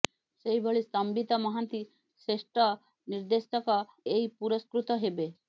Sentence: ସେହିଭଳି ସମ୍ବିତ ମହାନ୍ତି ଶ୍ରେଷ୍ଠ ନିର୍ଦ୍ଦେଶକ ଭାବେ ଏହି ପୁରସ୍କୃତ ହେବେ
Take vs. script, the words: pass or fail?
fail